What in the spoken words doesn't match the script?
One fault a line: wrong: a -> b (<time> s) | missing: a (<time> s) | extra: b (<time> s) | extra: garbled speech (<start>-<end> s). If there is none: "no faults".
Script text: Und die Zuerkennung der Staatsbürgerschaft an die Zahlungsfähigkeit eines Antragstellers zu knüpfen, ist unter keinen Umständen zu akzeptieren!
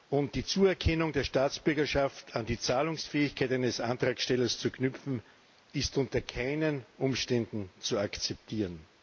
no faults